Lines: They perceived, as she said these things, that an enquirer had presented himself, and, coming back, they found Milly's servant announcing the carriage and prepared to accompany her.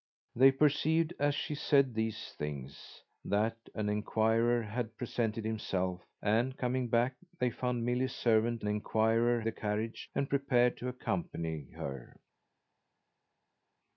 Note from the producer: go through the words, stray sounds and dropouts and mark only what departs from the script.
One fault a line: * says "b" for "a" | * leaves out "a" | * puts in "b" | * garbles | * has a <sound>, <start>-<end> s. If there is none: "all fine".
* says "enquirer" for "announcing"